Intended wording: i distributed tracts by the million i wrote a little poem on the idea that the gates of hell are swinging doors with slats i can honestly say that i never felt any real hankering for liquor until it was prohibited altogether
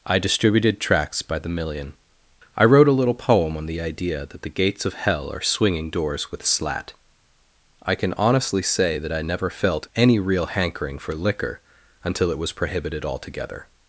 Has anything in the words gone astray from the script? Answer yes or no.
yes